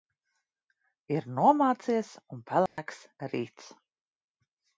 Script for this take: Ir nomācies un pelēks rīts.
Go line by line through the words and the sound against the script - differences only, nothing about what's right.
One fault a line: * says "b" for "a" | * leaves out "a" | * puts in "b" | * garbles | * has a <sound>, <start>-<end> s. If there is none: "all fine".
* has a dropout, 2.7-2.8 s